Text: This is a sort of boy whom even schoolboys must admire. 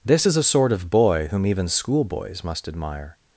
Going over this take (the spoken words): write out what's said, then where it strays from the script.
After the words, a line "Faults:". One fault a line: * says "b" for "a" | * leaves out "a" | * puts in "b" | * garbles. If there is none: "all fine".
This is a sort of boy whom even schoolboys must admire.
Faults:
all fine